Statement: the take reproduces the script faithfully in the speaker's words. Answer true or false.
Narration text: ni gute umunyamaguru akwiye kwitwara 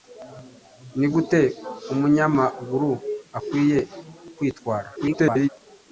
false